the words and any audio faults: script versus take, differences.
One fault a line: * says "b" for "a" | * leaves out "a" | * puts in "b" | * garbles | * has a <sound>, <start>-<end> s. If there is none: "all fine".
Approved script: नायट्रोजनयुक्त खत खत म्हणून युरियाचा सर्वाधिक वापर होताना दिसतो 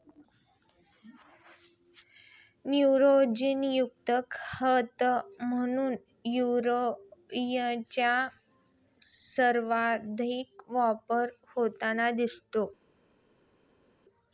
* leaves out "खत"